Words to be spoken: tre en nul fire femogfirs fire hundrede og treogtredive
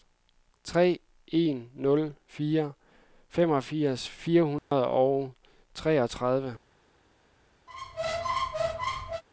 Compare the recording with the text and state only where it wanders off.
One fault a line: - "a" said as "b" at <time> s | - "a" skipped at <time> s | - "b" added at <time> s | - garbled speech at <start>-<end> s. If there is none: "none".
none